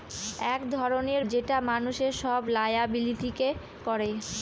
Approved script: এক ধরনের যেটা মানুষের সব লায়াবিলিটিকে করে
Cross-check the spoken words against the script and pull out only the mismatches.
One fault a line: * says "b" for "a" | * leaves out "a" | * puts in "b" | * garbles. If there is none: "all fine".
all fine